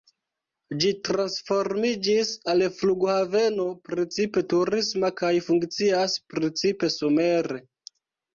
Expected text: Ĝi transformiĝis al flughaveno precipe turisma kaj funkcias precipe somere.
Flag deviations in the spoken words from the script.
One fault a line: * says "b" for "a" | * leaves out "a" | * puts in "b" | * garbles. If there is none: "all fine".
all fine